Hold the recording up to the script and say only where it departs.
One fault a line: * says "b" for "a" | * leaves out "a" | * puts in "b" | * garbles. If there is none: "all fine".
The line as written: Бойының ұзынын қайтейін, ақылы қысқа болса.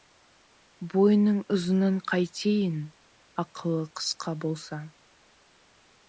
all fine